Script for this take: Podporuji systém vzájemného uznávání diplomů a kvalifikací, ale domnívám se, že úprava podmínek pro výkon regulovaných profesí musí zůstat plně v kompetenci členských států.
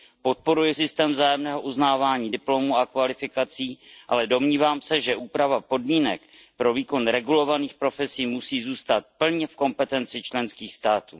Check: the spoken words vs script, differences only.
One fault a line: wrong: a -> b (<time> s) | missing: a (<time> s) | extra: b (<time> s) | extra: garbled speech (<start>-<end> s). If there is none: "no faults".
no faults